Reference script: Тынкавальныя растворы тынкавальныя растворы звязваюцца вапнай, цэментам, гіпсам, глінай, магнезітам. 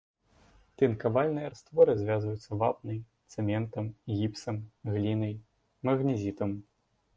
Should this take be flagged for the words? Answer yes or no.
yes